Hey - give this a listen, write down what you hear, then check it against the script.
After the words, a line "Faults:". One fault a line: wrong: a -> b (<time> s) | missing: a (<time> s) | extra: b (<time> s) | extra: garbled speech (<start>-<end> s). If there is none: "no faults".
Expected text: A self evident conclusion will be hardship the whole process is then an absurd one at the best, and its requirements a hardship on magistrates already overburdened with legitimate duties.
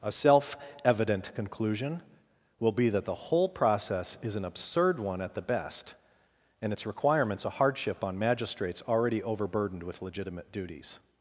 A self evident conclusion will be that the whole process is an absurd one at the best, and its requirements a hardship on magistrates already overburdened with legitimate duties.
Faults:
wrong: hardship -> that (2.9 s)
missing: then (4.4 s)